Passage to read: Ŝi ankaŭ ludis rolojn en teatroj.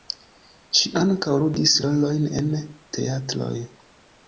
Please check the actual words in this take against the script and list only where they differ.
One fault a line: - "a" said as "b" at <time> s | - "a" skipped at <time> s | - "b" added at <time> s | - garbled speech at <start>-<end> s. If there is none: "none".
none